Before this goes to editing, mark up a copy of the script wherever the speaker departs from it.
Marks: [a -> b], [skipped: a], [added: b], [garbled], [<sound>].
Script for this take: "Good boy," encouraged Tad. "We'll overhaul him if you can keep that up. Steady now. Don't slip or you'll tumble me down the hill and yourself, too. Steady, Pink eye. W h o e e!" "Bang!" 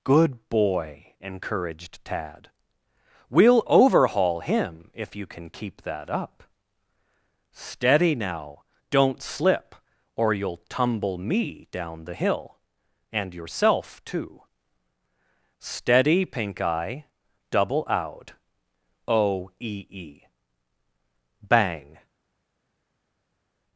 "Good boy," encouraged Tad. "We'll overhaul him if you can keep that up. Steady now. Don't slip or you'll tumble me down the hill and yourself, too. Steady, Pink eye. [W h -> Double out] o e e!" "Bang!"